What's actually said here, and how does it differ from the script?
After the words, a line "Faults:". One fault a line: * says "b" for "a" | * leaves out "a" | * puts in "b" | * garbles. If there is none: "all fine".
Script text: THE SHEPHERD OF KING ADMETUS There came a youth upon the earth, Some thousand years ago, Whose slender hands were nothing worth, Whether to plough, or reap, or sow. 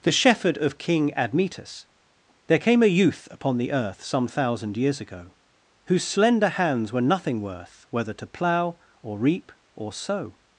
THE SHEPHERD OF KING ADMETUS There came a youth upon the earth, Some thousand years ago, Whose slender hands were nothing worth, Whether to plough, or reap, or sow.
Faults:
all fine